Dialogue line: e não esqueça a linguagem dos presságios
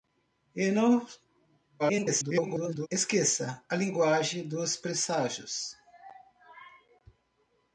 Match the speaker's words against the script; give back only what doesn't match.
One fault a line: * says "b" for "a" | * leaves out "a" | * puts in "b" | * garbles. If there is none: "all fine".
* garbles